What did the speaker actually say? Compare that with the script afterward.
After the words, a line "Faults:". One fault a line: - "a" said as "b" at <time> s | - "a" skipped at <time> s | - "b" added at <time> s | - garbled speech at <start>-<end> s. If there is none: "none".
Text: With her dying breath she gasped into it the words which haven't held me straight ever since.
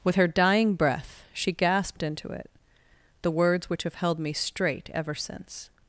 With her dying breath she gasped into it the words which have held me straight ever since.
Faults:
- "haven't" said as "have" at 3.8 s